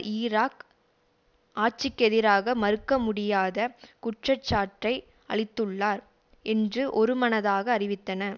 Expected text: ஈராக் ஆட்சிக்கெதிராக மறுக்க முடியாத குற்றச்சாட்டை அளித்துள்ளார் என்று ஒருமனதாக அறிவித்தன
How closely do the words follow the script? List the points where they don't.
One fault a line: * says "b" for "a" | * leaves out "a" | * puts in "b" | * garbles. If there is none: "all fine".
all fine